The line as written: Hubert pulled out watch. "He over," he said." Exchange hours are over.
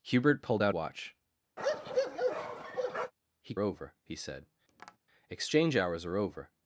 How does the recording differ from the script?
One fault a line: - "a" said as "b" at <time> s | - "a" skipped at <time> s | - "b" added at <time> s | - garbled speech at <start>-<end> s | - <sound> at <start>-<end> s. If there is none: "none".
- bark at 1.6-3.1 s
- tap at 4.7-5.0 s